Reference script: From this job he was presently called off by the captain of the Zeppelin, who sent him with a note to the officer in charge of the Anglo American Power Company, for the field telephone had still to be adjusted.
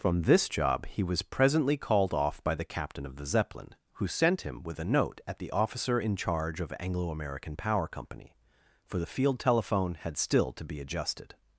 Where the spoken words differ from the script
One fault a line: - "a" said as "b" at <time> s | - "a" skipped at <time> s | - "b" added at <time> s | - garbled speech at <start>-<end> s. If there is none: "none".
- "to" said as "at" at 5.3 s
- "the" skipped at 6.7 s